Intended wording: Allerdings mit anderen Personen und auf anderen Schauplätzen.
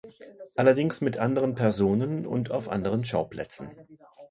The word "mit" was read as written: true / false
true